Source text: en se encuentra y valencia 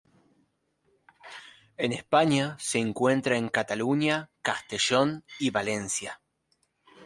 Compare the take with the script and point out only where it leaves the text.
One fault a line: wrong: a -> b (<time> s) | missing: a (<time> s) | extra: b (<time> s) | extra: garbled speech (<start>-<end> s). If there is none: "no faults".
extra: españa (1.9 s)
extra: en cataluña castellón (3.4 s)